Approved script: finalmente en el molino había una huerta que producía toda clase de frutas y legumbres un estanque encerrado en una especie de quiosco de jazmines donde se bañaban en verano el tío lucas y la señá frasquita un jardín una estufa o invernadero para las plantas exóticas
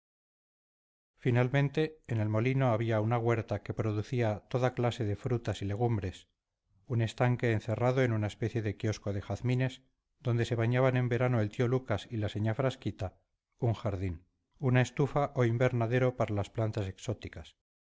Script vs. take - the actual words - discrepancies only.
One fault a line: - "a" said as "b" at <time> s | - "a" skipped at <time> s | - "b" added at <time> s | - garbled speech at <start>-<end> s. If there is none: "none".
none